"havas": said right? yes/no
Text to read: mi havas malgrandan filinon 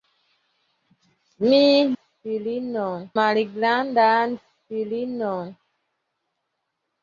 no